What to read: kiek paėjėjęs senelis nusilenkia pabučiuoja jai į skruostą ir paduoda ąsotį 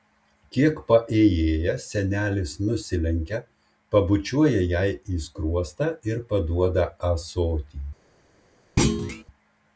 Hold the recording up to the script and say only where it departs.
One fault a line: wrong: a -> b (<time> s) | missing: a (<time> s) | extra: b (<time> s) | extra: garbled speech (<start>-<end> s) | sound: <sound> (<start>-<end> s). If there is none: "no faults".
sound: thud (8.8-9.2 s)